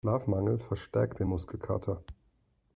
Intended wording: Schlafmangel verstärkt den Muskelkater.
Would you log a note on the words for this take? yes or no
no